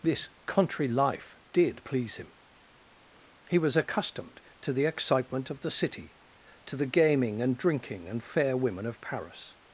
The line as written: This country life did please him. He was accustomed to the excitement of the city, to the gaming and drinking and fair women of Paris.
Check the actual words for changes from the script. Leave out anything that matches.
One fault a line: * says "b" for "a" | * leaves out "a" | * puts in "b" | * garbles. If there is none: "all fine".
all fine